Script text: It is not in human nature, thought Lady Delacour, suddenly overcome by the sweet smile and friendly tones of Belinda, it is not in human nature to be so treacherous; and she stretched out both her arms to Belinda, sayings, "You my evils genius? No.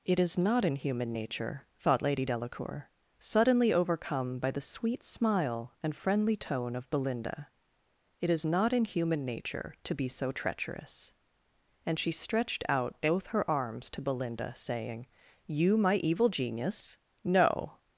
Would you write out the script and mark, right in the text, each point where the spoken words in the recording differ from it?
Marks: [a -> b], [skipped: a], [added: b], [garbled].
It is not in human nature, thought Lady Delacour, suddenly overcome by the sweet smile and friendly [tones -> tone] of Belinda, it is not in human nature to be so treacherous; and she stretched out both her arms to Belinda, [sayings, -> saying] "You my [evils -> evil] genius? No.